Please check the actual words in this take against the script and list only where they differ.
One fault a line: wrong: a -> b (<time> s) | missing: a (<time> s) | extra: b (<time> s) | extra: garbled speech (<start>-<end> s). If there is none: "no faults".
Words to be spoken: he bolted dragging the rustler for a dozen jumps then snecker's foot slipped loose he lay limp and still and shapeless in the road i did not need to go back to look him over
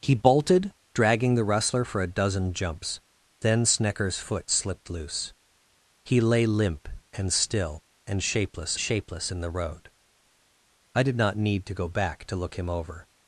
extra: shapeless (8.8 s)